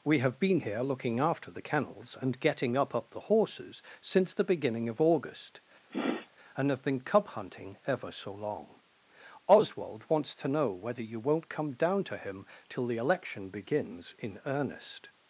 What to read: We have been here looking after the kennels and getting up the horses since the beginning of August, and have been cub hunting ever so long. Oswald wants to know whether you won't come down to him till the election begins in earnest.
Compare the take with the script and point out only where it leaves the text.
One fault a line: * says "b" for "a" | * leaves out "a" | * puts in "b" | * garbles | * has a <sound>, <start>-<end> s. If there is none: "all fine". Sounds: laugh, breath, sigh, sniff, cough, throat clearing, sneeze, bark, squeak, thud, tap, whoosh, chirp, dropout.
* puts in "up"
* has a sniff, 5.9-6.3 s